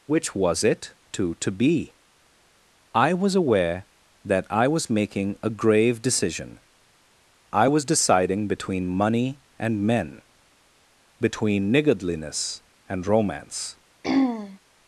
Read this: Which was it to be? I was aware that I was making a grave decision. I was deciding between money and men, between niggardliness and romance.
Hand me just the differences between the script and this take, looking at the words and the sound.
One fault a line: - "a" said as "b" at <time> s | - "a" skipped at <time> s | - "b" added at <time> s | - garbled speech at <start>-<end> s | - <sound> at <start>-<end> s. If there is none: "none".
- "to" added at 1.4 s
- throat clearing at 14.0-14.6 s